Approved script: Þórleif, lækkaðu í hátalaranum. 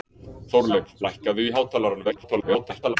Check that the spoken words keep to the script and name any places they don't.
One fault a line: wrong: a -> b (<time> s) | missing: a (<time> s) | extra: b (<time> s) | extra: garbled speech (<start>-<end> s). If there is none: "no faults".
extra: garbled speech (2.0-3.0 s)